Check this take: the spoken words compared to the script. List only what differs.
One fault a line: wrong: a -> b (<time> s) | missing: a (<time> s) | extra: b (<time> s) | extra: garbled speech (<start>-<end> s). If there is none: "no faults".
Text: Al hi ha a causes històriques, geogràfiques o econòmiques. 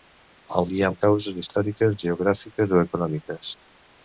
no faults